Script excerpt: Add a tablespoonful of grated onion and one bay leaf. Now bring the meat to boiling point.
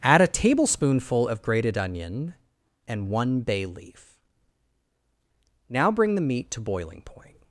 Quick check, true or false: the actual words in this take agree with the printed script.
true